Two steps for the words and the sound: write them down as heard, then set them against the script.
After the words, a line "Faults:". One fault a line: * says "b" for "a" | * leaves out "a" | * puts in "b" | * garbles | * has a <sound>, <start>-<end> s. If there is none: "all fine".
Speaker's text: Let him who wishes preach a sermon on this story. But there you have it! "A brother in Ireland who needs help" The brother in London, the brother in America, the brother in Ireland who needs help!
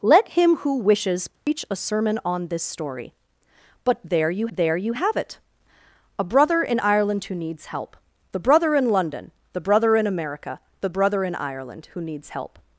Let him who wishes preach a sermon on this story. But there you there you have it! "A brother in Ireland who needs help" The brother in London, the brother in America, the brother in Ireland who needs help!
Faults:
* has a dropout, 1.4-1.5 s
* puts in "there you"